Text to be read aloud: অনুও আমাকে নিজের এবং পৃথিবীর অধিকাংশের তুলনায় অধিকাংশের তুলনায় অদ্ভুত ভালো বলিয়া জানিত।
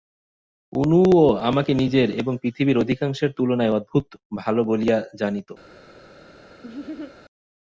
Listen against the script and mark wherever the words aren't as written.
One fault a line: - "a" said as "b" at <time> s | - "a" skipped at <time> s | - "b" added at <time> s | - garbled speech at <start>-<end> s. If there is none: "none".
- "অধিকাংশের তুলনায়" skipped at 3.8 s